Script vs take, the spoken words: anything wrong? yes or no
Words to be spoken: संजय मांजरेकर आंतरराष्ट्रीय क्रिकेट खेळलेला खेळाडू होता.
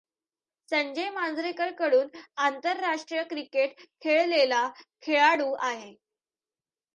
yes